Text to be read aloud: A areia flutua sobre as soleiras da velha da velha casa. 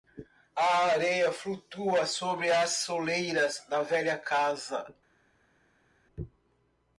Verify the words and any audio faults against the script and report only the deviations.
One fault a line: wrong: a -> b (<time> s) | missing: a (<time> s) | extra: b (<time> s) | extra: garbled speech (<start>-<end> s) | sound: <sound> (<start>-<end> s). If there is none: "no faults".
missing: da velha (4.2 s)